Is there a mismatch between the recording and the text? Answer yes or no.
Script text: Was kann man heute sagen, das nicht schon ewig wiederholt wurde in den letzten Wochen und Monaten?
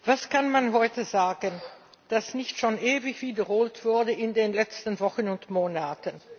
no